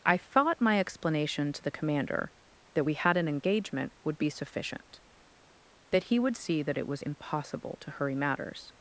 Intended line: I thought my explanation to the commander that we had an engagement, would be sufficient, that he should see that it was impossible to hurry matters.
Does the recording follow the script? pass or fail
fail